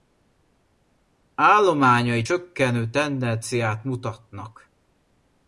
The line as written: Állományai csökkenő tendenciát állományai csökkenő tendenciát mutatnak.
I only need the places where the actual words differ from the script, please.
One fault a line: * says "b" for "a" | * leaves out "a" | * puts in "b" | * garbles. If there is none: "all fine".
* leaves out "állományai csökkenő tendenciát"